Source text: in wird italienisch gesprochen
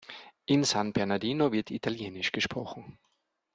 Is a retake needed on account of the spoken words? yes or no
yes